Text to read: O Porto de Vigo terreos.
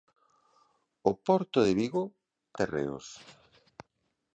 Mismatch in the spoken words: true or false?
false